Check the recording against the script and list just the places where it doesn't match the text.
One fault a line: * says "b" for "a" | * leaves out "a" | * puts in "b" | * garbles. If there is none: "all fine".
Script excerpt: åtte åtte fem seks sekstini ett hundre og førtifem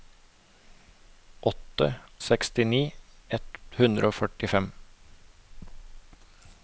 * leaves out "åtte fem seks"